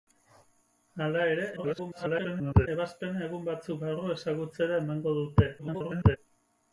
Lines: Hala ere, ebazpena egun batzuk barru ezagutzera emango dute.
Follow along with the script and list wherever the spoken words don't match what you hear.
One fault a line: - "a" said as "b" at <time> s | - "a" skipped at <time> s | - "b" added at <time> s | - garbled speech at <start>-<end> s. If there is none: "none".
- garbled speech at 1.6-2.7 s
- garbled speech at 5.6-6.2 s